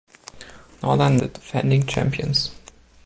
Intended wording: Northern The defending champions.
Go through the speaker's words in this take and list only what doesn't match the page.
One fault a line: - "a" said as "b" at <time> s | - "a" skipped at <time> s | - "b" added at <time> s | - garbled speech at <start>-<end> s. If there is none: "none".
none